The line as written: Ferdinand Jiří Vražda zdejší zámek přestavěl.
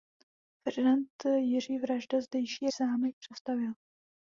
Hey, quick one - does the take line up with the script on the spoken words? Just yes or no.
yes